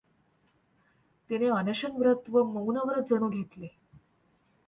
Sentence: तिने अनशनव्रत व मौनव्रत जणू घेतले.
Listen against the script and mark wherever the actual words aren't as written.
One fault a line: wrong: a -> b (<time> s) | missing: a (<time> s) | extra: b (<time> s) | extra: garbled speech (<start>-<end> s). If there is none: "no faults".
no faults